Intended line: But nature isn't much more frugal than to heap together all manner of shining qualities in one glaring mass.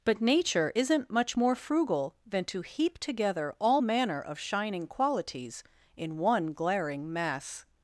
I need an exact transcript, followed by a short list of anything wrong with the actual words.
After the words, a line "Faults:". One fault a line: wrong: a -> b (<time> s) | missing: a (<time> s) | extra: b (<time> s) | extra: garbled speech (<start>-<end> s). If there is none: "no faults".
But nature isn't much more frugal than to heap together all manner of shining qualities in one glaring mass.
Faults:
no faults